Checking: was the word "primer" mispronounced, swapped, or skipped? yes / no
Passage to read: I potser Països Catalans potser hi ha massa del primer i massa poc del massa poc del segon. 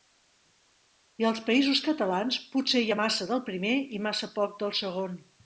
no